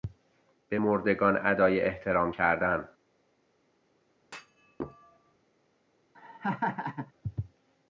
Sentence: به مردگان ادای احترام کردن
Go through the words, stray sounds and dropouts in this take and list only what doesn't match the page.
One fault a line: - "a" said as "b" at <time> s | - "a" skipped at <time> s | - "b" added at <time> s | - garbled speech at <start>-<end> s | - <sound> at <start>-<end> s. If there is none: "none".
- thud at 4.2-5.4 s
- laugh at 6.1-7.1 s